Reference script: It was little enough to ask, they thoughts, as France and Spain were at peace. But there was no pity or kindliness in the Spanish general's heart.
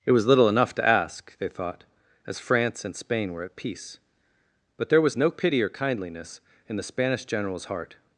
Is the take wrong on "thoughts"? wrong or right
wrong